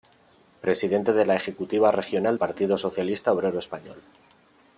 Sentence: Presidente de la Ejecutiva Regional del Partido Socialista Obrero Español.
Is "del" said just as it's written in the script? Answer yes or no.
no